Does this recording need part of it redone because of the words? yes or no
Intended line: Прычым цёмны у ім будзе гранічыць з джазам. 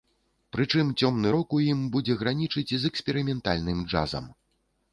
yes